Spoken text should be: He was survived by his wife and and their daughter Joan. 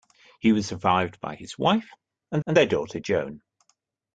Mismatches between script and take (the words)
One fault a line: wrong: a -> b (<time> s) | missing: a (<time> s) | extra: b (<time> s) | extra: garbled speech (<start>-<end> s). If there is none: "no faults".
no faults